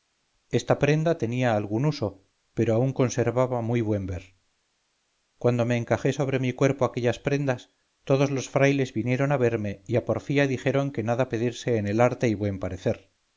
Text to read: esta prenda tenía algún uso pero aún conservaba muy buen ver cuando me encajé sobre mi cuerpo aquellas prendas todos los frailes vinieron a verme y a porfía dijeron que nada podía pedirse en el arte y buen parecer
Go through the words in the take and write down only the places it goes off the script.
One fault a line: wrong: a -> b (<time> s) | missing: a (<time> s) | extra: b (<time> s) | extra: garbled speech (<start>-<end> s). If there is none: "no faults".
missing: podía (11.3 s)